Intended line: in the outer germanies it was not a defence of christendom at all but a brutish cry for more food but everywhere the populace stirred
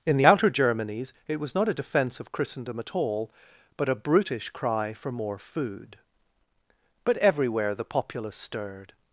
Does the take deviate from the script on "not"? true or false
false